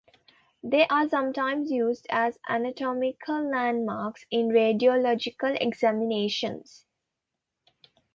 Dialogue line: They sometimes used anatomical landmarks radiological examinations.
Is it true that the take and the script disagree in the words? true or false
true